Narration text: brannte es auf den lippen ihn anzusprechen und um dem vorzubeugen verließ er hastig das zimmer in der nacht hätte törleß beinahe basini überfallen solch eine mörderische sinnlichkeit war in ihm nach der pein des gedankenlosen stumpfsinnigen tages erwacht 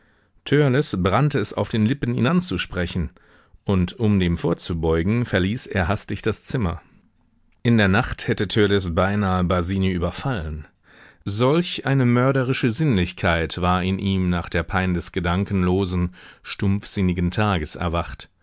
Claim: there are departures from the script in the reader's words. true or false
false